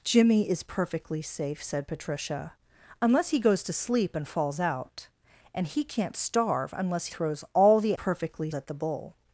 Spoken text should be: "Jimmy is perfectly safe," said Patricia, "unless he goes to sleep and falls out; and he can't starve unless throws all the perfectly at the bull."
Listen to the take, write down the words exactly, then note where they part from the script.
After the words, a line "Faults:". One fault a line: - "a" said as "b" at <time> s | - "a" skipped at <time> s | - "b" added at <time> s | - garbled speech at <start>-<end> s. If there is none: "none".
"Jimmy is perfectly safe," said Patricia, "unless he goes to sleep and falls out; and he can't starve unless throws all the perfectly at the bull."
Faults:
none